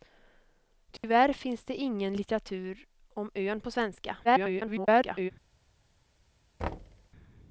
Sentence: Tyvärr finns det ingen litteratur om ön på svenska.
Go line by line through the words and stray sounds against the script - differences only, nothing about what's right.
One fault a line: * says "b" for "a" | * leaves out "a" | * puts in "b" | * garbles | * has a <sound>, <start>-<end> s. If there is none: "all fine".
* has a dropout, 1.0-1.0 s
* garbles
* has a thud, 6.6-7.1 s